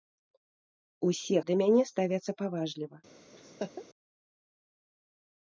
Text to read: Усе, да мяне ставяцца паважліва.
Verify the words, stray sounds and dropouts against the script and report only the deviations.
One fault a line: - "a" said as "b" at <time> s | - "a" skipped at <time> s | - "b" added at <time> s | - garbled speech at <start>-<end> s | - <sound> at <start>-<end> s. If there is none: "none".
- laugh at 3.3-3.9 s